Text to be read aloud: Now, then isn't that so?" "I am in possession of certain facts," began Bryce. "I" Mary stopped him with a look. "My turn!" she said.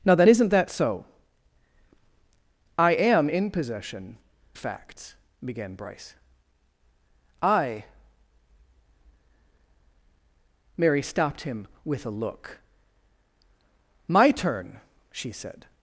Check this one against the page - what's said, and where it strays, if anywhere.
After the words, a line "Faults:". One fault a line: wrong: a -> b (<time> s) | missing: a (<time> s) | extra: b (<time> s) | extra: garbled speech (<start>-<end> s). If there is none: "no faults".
Now, then isn't that so?" "I am in possession facts," began Bryce. "I" Mary stopped him with a look. "My turn!" she said.
Faults:
missing: of certain (4.2 s)